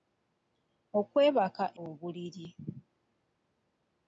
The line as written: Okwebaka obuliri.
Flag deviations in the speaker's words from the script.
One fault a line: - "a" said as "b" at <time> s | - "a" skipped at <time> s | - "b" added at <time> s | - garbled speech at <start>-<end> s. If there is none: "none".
none